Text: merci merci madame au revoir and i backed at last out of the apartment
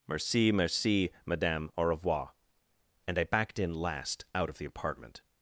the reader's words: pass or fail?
fail